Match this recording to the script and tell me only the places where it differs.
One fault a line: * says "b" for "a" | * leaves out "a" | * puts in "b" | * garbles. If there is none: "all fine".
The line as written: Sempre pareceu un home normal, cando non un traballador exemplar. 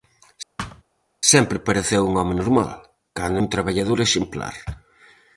* leaves out "non"